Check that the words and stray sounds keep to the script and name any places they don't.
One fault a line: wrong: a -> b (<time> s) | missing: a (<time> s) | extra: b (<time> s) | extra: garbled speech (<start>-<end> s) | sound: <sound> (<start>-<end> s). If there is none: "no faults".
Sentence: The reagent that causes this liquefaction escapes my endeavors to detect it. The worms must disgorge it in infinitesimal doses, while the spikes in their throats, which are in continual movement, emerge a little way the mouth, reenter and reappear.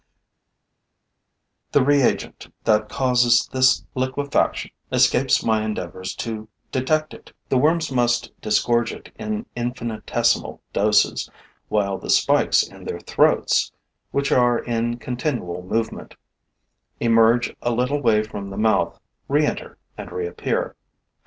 extra: from (18.2 s)